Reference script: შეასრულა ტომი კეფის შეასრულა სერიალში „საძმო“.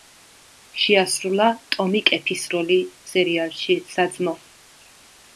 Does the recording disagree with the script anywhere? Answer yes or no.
yes